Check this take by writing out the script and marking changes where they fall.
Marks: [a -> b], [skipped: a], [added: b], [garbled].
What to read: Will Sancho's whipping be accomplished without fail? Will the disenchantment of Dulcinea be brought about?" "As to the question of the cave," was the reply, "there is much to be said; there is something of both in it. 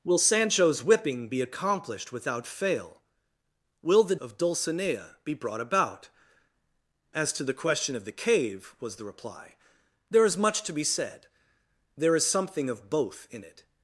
Will Sancho's whipping be accomplished without fail? Will the [skipped: disenchantment] of Dulcinea be brought about?" "As to the question of the cave," was the reply, "there is much to be said; there is something of both in it.